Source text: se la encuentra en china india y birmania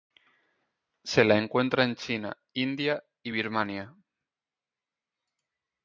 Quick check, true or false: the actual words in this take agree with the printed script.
true